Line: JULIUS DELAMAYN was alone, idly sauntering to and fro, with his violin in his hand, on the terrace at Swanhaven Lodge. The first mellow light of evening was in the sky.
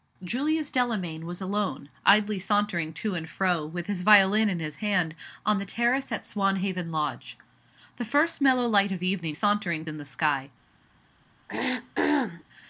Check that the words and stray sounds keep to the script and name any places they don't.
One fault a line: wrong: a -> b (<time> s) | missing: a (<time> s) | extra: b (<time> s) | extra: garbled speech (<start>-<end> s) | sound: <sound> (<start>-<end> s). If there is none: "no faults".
wrong: was -> sauntering (9.3 s)
sound: throat clearing (11.5-12.4 s)